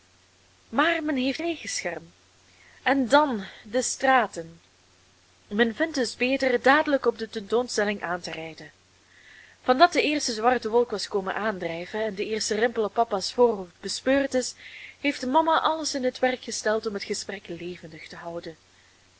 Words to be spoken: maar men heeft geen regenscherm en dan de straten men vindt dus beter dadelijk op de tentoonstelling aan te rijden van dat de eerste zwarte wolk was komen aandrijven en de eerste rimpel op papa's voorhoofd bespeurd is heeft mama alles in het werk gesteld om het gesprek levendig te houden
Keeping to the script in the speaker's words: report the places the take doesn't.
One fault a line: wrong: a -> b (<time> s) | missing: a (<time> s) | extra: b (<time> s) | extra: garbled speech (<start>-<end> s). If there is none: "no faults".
missing: geen (1.4 s)